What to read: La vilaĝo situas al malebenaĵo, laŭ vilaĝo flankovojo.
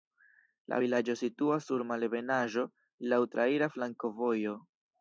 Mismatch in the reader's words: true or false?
true